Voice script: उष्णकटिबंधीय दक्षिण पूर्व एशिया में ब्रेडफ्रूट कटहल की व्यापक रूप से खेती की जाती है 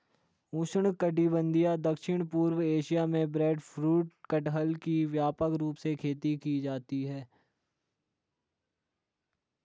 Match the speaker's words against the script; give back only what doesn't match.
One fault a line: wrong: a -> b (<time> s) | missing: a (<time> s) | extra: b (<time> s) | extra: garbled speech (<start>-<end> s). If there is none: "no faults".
no faults